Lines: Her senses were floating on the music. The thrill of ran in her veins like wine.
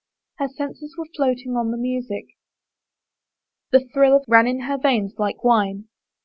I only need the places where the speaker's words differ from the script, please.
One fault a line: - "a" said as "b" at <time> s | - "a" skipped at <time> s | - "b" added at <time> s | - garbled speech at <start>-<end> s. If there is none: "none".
none